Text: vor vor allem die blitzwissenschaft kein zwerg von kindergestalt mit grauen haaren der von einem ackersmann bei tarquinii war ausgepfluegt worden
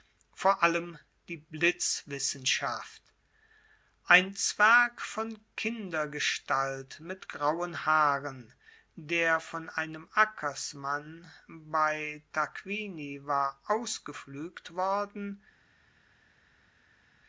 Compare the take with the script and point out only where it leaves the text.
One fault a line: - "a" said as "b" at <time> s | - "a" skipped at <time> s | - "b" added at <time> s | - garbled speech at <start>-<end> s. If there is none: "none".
- "vor" skipped at 0.6 s
- "kein" said as "ein" at 4.0 s